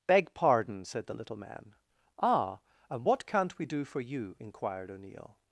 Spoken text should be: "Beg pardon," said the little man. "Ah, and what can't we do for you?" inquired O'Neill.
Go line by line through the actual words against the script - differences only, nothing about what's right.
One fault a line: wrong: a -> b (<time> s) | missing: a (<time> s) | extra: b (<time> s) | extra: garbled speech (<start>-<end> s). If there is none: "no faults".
no faults